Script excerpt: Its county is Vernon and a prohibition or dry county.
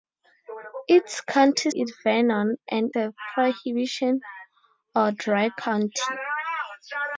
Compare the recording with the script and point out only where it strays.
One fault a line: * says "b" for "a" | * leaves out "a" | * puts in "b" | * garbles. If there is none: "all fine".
all fine